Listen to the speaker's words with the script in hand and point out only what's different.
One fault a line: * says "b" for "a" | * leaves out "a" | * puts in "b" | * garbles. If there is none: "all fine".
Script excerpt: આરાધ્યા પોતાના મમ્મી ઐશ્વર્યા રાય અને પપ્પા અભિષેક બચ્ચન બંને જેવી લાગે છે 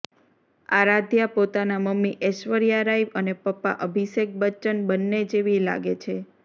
all fine